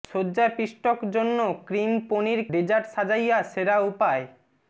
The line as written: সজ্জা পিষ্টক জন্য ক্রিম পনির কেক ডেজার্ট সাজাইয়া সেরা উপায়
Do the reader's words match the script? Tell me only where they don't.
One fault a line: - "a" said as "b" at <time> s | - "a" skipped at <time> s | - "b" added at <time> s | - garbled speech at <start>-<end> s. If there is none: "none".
- "কেক" skipped at 2.4 s